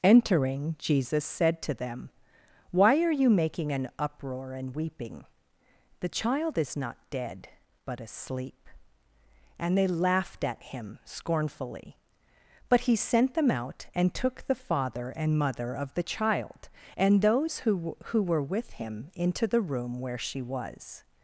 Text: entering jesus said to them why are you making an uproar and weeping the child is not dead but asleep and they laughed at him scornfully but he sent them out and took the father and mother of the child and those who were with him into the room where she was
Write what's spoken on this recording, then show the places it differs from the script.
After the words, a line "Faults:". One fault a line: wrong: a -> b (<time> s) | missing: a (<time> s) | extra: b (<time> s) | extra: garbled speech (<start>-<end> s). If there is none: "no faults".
entering jesus said to them why are you making an uproar and weeping the child is not dead but asleep and they laughed at him scornfully but he sent them out and took the father and mother of the child and those who who were with him into the room where she was
Faults:
extra: who (18.1 s)